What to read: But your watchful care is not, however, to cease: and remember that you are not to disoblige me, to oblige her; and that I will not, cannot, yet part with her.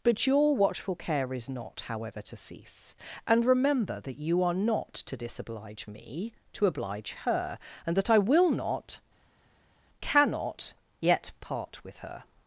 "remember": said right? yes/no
yes